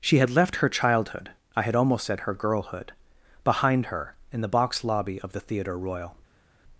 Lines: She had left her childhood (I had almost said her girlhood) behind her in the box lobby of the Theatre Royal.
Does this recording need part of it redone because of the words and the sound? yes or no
no